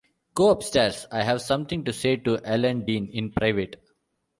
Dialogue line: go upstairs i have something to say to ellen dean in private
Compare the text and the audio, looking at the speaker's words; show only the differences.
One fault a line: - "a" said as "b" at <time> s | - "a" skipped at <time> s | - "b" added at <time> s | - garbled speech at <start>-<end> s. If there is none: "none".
none